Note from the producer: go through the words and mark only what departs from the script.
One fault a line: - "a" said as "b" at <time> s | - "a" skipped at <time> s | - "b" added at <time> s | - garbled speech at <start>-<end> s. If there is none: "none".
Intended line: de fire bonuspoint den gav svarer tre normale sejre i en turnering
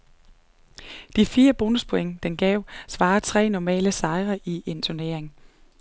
none